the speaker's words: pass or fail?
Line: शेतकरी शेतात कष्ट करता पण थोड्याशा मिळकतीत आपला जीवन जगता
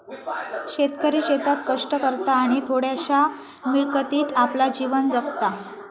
fail